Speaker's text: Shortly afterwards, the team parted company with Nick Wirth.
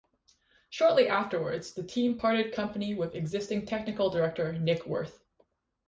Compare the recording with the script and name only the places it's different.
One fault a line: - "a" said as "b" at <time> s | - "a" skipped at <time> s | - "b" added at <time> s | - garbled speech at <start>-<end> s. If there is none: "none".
- "existing technical director" added at 3.1 s